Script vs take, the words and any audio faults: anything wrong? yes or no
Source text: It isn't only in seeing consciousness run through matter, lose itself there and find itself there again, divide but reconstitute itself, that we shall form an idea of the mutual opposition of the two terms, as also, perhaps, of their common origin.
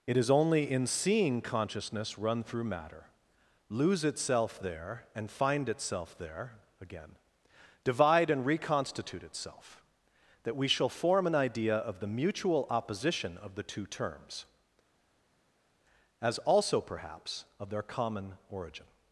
yes